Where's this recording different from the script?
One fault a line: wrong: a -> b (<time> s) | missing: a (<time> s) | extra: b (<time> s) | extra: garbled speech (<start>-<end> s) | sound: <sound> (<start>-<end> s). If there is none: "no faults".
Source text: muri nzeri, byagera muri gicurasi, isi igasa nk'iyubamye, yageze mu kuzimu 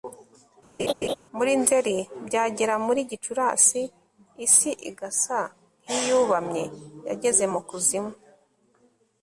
sound: laugh (0.8-1.2 s)